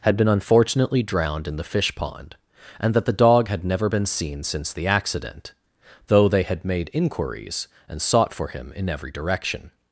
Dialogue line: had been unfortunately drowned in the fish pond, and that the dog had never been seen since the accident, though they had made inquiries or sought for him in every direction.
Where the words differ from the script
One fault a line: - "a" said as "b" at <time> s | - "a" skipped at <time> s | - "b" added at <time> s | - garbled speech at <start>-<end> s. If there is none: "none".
- "or" said as "and" at 7.9 s